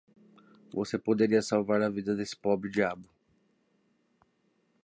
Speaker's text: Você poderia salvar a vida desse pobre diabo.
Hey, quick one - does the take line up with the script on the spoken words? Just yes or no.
yes